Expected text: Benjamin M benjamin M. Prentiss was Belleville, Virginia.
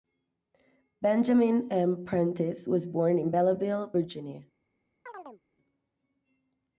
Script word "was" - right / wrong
wrong